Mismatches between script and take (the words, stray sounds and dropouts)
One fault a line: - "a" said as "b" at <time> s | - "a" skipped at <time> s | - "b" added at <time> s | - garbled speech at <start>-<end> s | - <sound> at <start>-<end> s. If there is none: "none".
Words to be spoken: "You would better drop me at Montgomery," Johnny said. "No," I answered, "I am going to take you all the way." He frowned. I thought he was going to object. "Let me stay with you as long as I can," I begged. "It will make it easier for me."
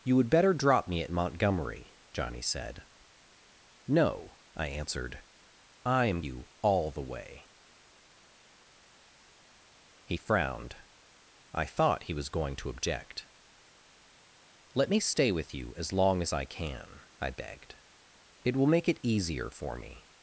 - "going to take" skipped at 6.2 s